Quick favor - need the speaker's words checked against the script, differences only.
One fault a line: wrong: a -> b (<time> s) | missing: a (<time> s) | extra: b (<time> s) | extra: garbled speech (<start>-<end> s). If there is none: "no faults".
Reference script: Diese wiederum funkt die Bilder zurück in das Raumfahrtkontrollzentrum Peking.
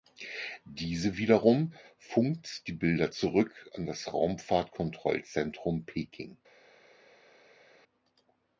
wrong: in -> an (3.7 s)